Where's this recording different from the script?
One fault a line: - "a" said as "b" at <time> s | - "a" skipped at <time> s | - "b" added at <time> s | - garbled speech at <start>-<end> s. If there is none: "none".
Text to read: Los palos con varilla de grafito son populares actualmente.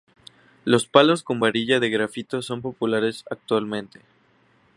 none